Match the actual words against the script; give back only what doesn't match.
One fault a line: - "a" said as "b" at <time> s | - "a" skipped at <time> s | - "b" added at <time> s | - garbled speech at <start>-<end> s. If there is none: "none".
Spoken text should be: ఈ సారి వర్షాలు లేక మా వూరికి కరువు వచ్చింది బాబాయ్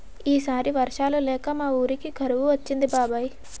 none